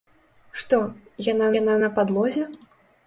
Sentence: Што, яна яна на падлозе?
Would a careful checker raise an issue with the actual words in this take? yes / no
no